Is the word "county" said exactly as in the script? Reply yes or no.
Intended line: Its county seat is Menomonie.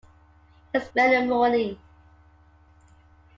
no